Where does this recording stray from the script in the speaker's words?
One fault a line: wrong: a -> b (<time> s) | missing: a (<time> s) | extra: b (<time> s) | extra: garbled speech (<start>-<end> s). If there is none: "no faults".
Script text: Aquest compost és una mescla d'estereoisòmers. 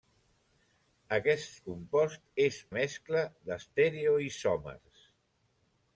missing: una (2.6 s)